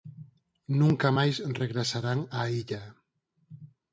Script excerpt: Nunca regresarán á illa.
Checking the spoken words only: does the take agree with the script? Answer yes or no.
no